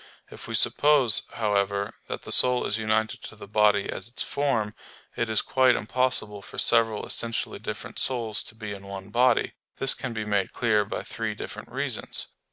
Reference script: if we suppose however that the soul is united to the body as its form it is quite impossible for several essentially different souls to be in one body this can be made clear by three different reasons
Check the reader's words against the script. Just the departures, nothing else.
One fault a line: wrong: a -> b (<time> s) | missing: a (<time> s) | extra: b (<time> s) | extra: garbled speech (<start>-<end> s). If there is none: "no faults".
no faults